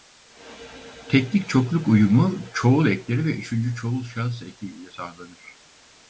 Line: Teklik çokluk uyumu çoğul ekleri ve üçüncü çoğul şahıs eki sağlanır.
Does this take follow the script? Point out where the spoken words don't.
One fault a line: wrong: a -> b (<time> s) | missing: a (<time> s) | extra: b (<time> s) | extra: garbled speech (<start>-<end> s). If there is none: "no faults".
extra: ile (4.7 s)